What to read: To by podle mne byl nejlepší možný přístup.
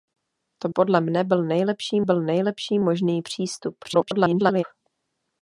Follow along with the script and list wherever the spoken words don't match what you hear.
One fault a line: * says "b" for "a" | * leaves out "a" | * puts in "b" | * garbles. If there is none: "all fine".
* leaves out "by"
* puts in "byl nejlepší"
* garbles